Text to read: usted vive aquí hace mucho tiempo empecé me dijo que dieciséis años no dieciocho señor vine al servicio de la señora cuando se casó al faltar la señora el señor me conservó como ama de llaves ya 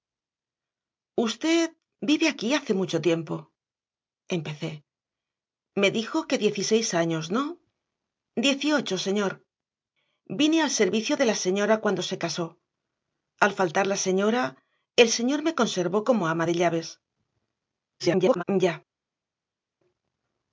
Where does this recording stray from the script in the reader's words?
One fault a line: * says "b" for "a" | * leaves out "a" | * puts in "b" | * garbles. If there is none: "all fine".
* garbles